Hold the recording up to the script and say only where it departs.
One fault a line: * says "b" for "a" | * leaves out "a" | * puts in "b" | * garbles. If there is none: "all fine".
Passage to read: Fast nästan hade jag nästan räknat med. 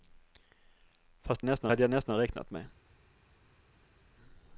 all fine